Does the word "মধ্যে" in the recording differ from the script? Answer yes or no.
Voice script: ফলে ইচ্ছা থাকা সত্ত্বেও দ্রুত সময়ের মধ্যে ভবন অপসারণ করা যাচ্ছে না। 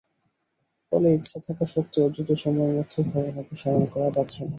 no